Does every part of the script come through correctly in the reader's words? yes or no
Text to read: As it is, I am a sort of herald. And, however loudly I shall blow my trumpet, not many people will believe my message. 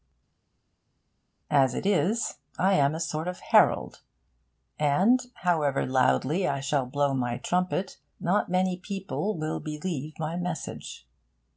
yes